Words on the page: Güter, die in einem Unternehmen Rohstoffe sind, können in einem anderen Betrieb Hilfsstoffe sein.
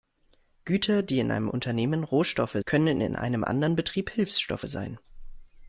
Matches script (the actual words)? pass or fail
fail